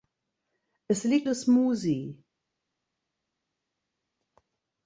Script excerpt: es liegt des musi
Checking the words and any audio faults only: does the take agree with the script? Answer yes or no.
yes